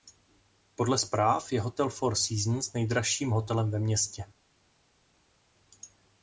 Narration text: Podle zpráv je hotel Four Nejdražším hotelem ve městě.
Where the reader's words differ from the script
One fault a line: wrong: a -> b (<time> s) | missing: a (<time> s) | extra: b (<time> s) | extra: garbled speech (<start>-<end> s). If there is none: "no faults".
extra: Seasons (2.1 s)